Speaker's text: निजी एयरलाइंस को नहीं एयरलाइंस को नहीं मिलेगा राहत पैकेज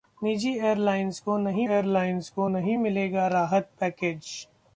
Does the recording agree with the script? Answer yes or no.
yes